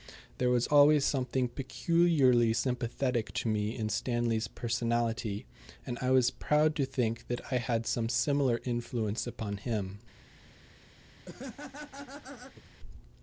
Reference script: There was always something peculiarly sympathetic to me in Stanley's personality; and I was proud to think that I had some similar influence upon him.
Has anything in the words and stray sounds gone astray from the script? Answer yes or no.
yes